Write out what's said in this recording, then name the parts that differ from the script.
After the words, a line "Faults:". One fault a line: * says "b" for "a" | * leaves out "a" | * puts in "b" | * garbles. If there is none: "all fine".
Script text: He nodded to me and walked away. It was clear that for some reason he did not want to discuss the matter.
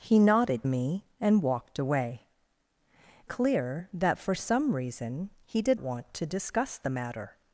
He nodded me and walked away. Clear that for some reason he did want to discuss the matter.
Faults:
* leaves out "to"
* leaves out "It was"
* leaves out "not"